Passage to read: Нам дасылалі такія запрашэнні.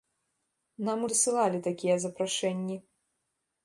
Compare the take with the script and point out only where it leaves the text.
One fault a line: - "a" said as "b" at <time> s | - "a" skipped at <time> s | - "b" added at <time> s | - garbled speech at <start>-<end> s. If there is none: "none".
none